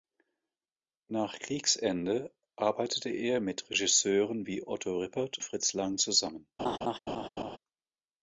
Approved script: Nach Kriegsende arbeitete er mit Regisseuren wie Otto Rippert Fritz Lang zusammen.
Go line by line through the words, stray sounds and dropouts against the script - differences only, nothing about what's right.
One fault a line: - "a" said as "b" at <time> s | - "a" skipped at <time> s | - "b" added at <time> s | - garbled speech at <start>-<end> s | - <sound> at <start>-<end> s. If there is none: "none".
- laugh at 6.6-7.6 s